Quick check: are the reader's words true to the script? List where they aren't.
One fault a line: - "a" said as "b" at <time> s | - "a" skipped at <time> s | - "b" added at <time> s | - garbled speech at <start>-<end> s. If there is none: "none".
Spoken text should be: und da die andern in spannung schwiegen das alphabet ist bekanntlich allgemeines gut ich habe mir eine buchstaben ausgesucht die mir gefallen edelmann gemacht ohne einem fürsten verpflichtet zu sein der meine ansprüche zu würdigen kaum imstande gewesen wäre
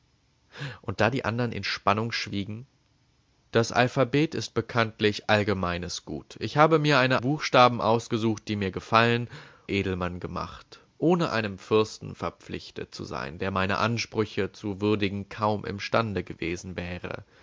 none